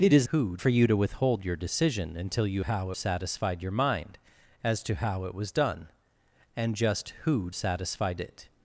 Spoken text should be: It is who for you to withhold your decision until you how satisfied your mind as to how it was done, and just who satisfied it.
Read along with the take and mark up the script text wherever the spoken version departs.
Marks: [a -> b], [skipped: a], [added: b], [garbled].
It is who for you to withhold your decision until you how satisfied your mind as to how it was done, and just who satisfied it.